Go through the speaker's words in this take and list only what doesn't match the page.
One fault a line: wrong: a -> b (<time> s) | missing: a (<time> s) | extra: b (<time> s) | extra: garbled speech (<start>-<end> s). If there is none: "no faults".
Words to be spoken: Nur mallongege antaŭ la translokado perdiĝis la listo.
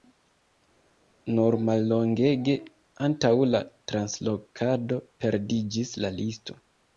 no faults